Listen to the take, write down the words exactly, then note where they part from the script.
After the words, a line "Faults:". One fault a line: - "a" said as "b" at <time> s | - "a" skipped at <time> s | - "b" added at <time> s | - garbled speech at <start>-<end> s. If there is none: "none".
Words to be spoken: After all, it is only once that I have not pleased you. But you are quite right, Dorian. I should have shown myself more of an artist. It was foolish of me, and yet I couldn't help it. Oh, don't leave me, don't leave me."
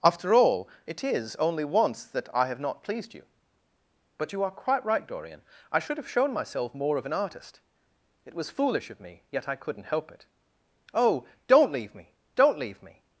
After all, it is only once that I have not pleased you. But you are quite right, Dorian. I should have shown myself more of an artist. It was foolish of me, yet I couldn't help it. Oh, don't leave me, don't leave me."
Faults:
- "and" skipped at 9.2 s